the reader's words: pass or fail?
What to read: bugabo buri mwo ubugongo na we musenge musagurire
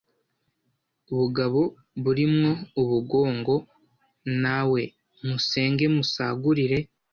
pass